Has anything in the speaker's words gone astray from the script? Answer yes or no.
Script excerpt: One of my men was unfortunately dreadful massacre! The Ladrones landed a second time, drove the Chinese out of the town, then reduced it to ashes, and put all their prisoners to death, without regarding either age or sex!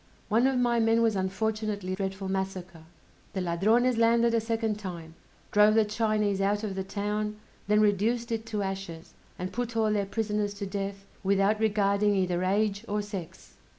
no